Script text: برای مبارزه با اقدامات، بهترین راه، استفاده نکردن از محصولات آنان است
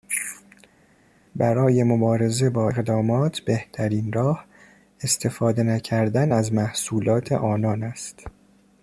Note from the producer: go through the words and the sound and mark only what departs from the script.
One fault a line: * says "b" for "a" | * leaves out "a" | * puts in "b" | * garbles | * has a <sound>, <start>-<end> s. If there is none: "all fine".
all fine